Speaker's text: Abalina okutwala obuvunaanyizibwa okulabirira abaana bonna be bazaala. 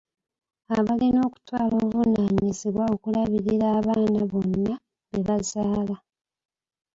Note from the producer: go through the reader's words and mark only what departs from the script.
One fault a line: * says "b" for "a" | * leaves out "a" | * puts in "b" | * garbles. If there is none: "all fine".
all fine